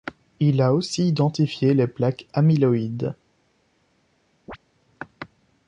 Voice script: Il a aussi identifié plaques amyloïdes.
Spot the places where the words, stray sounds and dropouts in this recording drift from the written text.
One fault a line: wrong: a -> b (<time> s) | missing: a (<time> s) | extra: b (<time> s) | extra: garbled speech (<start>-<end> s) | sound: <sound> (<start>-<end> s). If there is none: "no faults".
extra: les (1.8 s)
sound: chirp (4.5-4.6 s)